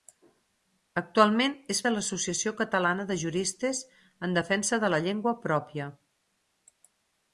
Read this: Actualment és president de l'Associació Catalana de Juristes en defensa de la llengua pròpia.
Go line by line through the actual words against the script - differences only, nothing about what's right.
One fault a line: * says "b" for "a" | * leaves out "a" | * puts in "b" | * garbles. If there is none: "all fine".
* leaves out "president"